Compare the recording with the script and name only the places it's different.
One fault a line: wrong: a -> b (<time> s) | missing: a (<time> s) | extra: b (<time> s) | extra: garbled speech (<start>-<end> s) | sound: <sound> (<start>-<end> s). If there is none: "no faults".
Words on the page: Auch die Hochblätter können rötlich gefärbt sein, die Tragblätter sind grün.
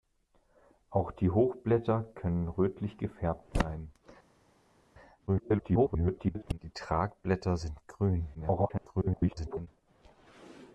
extra: garbled speech (5.3-6.6 s)
extra: garbled speech (8.3-9.7 s)